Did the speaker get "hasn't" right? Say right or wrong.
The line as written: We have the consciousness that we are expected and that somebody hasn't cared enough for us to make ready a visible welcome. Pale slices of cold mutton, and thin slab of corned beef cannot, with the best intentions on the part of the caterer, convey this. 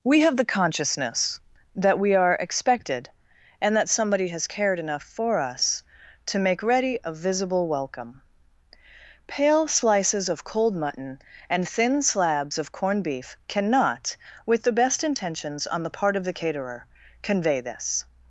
wrong